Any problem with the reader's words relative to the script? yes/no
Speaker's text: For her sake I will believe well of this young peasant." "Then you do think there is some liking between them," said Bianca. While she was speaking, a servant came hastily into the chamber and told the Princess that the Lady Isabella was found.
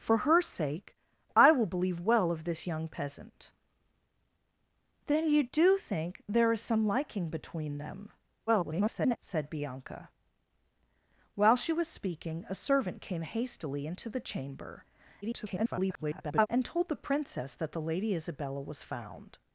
yes